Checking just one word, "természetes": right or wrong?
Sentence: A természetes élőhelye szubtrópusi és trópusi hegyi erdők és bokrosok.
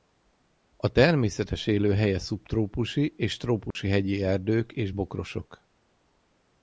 right